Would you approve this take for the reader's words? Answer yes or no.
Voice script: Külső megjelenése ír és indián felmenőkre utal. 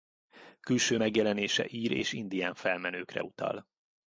yes